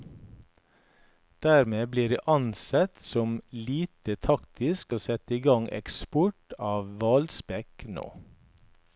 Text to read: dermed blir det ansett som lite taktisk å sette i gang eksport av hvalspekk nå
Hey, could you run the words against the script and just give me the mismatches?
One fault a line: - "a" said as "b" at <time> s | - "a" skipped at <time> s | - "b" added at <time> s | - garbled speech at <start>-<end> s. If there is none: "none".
none